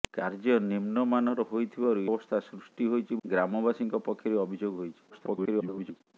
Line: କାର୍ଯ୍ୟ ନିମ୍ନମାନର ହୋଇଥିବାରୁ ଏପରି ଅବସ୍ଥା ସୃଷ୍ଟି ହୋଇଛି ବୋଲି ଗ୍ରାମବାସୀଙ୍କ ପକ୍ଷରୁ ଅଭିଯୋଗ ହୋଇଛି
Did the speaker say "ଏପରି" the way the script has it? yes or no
no